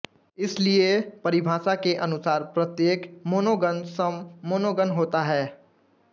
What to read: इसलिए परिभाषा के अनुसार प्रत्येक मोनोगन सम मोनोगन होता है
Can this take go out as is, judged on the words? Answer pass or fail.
pass